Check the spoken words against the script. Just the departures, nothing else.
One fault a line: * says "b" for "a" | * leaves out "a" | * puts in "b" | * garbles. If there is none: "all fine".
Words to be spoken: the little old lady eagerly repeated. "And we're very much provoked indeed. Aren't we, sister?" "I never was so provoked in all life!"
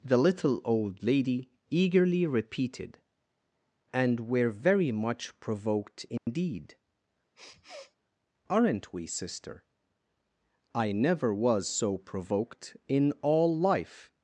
all fine